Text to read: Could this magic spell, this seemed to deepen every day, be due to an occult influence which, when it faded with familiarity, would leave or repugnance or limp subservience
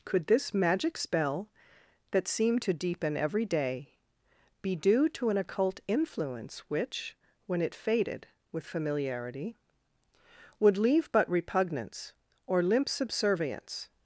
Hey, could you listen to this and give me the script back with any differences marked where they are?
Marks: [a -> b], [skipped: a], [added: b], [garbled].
Could this magic spell, [this -> that] seemed to deepen every day, be due to an occult influence which, when it faded with familiarity, would leave [or -> but] repugnance or limp subservience